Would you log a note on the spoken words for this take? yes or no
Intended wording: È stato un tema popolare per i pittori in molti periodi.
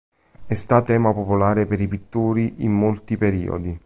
yes